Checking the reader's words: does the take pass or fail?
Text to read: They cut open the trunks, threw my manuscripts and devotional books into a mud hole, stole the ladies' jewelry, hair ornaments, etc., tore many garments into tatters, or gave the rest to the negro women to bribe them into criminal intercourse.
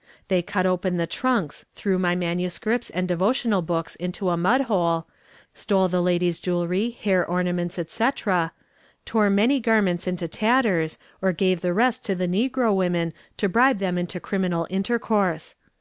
pass